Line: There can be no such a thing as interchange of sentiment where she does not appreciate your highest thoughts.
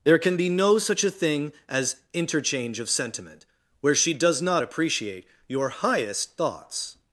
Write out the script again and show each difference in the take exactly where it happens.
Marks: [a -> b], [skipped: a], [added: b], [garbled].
There can be no such a thing as interchange of sentiment where she does not appreciate your highest thoughts.